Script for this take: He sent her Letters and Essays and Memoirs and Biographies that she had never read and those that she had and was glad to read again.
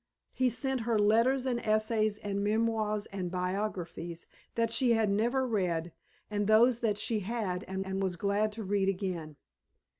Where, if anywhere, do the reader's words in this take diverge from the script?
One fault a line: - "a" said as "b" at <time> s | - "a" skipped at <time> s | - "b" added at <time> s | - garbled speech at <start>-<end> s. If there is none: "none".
- "and" added at 7.8 s